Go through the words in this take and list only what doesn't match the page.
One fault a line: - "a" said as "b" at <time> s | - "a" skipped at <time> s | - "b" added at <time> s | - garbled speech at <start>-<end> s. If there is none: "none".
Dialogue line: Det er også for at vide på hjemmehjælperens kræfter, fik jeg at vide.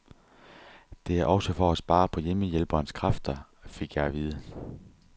- "vide" said as "spare" at 1.8 s